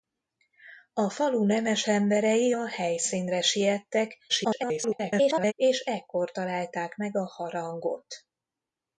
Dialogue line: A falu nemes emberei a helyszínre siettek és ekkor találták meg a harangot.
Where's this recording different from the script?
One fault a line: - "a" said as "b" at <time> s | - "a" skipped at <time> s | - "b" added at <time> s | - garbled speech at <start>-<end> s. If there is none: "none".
- garbled speech at 4.3-5.5 s